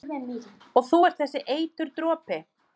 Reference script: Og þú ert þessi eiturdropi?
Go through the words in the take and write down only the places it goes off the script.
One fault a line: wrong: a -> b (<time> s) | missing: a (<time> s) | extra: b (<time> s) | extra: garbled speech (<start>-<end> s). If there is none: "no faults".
no faults